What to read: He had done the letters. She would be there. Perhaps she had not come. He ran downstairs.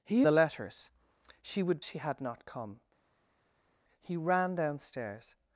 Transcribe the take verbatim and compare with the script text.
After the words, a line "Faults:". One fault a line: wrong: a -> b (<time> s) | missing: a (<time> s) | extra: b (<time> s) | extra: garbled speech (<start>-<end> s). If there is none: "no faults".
He the letters. She would she had not come. He ran downstairs.
Faults:
missing: had done (0.2 s)
missing: be there Perhaps (1.8 s)